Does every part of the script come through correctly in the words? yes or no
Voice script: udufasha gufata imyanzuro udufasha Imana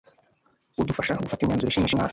no